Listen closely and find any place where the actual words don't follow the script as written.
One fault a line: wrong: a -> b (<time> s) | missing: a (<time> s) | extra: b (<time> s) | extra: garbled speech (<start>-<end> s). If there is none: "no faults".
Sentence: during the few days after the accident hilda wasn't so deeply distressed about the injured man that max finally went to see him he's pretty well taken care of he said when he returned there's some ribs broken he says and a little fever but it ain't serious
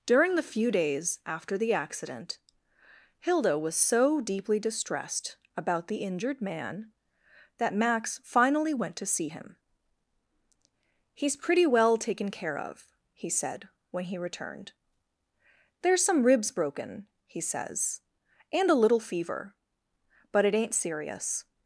wrong: wasn't -> was (3.6 s)